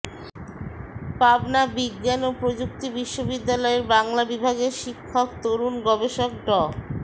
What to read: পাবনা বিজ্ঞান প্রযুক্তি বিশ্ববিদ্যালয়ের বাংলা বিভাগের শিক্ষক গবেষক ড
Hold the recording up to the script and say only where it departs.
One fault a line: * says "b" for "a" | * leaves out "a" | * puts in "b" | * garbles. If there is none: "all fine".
* puts in "ও"
* puts in "তরুণ"